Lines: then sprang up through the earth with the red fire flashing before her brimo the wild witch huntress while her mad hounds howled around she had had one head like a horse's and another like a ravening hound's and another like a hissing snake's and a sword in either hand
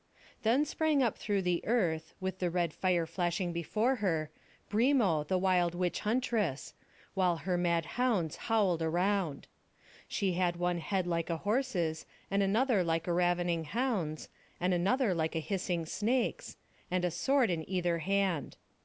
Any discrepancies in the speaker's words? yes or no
yes